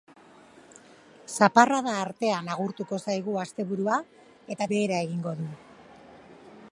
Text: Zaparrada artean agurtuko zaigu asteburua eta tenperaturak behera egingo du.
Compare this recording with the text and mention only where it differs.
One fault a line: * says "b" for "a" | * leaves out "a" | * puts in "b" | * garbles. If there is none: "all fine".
* leaves out "tenperaturak"